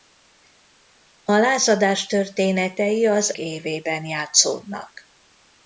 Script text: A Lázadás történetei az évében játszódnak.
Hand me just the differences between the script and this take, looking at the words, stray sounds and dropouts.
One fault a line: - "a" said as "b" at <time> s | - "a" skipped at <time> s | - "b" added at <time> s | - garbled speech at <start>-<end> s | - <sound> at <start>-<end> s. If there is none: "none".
none